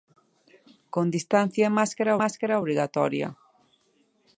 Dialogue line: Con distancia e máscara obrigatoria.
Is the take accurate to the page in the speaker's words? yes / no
no